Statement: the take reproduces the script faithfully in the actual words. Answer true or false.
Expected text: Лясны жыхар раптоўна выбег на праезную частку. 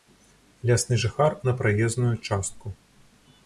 false